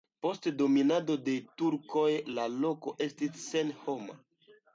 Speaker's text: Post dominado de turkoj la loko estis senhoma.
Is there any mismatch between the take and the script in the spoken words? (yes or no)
no